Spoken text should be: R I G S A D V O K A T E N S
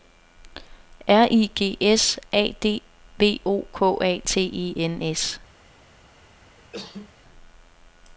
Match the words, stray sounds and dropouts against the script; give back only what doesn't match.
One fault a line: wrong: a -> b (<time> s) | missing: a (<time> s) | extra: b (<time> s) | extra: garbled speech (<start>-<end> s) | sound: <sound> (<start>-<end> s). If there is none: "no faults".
sound: cough (6.6-7.1 s)